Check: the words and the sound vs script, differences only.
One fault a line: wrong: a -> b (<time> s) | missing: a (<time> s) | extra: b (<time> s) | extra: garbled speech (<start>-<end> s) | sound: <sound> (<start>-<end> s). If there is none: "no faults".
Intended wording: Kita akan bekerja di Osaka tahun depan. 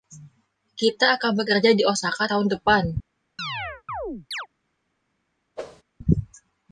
sound: chirp (3.4-4.5 s)
sound: whoosh (5.6-5.8 s)